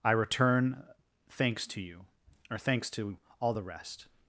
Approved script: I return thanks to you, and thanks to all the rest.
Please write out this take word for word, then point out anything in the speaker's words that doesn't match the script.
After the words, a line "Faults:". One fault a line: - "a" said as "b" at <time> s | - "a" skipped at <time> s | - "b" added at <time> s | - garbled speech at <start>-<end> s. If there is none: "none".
I return thanks to you, or thanks to all the rest.
Faults:
- "and" said as "or" at 2.5 s